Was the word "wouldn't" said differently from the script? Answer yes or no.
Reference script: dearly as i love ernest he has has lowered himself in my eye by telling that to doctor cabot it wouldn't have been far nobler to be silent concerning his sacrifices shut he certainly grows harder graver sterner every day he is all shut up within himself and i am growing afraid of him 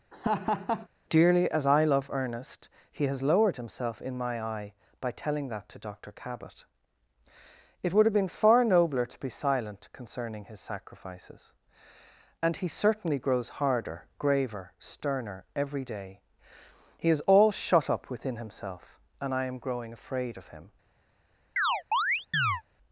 yes